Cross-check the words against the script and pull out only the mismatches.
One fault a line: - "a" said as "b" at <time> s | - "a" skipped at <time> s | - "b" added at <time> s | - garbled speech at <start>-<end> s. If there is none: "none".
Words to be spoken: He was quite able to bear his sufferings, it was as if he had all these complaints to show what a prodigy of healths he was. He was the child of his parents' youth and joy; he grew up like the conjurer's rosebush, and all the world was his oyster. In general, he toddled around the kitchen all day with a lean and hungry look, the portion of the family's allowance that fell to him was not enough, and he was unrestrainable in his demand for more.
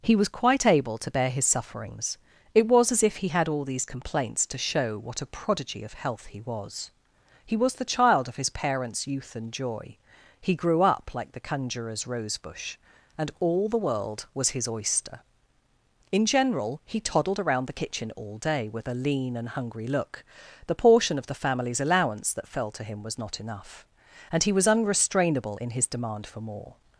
- "healths" said as "health" at 5.9 s